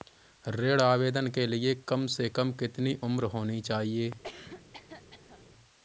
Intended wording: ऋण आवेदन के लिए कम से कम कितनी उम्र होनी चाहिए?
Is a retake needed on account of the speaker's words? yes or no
no